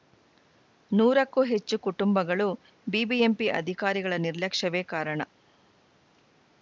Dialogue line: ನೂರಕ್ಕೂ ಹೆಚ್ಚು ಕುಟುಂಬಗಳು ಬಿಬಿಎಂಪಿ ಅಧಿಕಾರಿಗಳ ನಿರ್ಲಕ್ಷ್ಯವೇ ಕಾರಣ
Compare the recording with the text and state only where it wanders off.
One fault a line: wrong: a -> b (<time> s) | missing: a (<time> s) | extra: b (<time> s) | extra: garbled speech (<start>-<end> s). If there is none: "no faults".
no faults